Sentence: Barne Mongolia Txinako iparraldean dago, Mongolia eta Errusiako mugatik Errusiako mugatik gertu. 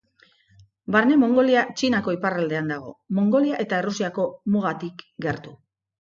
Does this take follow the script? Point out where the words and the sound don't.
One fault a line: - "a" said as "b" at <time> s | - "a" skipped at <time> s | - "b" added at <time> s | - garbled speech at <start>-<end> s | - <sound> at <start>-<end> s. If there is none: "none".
- "Errusiako mugatik" skipped at 5.0 s